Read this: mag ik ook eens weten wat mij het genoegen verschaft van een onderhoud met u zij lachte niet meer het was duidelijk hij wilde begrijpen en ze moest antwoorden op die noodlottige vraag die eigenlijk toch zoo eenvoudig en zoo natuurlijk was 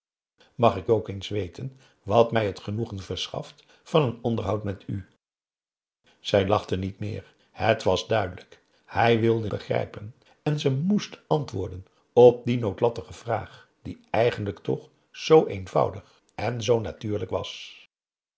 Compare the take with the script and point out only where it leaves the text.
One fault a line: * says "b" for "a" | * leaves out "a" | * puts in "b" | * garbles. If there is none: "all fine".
all fine